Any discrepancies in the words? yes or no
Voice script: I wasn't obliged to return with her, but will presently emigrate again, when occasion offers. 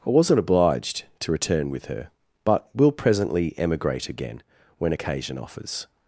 no